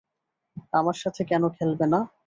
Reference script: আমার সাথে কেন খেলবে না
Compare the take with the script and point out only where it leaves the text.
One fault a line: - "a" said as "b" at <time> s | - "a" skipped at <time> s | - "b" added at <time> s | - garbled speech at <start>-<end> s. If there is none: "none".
none